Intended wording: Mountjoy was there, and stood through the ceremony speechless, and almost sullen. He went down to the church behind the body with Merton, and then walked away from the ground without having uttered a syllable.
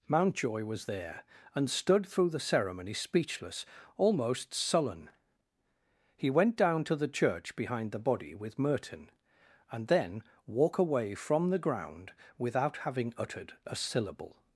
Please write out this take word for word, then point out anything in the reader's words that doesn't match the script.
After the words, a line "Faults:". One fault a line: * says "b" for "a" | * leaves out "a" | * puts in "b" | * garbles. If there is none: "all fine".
Mountjoy was there, and stood through the ceremony speechless, almost sullen. He went down to the church behind the body with Merton, and then walk away from the ground without having uttered a syllable.
Faults:
* leaves out "and"
* says "walk" for "walked"